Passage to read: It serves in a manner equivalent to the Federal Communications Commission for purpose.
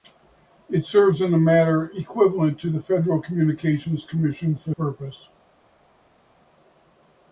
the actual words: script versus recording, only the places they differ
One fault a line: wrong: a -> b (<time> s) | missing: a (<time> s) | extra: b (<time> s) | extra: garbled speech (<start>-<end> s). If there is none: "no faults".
no faults